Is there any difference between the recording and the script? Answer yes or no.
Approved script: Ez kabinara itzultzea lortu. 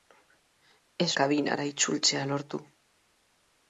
no